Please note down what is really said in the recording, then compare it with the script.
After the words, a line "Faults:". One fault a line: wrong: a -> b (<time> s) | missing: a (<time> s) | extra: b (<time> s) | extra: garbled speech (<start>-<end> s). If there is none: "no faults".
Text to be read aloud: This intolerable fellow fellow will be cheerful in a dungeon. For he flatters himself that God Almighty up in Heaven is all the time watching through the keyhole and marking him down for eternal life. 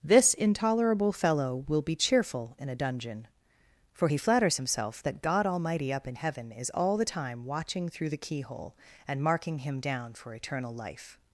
This intolerable fellow will be cheerful in a dungeon. For he flatters himself that God Almighty up in Heaven is all the time watching through the keyhole and marking him down for eternal life.
Faults:
missing: fellow (1.6 s)